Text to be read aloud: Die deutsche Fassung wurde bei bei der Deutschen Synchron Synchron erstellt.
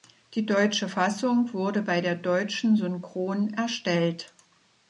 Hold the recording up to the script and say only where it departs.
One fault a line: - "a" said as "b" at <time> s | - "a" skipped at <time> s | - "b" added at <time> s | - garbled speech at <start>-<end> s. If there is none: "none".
- "bei" skipped at 2.0 s
- "Synchron" skipped at 3.5 s